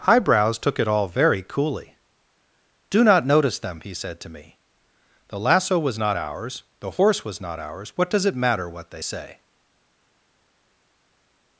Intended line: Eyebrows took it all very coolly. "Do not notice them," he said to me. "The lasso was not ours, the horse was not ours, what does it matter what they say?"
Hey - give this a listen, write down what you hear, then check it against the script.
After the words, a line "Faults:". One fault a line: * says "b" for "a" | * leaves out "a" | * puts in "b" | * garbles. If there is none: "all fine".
Eyebrows took it all very coolly. "Do not notice them," he said to me. "The lasso was not ours, the horse was not ours, what does it matter what they say?"
Faults:
all fine